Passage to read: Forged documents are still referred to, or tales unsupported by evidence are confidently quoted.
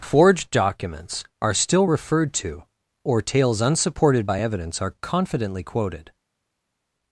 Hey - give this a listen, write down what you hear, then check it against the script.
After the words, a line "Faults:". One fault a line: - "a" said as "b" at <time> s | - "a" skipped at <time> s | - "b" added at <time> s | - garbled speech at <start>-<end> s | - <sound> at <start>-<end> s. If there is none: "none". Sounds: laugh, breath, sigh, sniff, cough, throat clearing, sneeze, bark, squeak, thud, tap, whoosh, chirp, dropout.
Forged documents are still referred to, or tales unsupported by evidence are confidently quoted.
Faults:
none